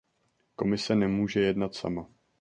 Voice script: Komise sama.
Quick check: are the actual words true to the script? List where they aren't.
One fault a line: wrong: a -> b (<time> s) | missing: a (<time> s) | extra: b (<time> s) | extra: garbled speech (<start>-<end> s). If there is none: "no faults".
extra: nemůže jednat (0.9 s)